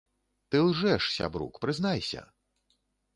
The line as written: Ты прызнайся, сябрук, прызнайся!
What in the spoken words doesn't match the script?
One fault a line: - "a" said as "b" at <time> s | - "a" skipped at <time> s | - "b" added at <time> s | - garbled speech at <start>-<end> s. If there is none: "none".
- "прызнайся" said as "лжэш" at 0.7 s